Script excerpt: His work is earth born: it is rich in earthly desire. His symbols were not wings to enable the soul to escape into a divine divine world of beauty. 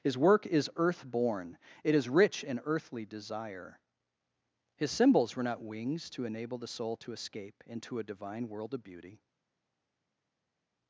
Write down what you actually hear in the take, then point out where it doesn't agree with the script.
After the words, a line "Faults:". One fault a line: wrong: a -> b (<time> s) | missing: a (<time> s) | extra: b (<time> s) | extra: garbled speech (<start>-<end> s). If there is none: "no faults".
His work is earth born: it is rich in earthly desire. His symbols were not wings to enable the soul to escape into a divine world of beauty.
Faults:
missing: divine (8.5 s)